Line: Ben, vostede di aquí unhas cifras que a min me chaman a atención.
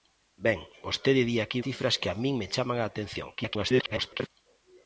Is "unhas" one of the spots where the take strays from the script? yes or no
yes